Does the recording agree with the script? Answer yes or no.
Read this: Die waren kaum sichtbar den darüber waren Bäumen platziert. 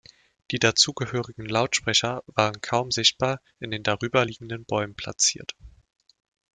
no